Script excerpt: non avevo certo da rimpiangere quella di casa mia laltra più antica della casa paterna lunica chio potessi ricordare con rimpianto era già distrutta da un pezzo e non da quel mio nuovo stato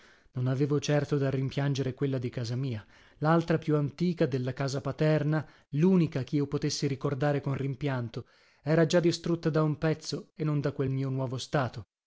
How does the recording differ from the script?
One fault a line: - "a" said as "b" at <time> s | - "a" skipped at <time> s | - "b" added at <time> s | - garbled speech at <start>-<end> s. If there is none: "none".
none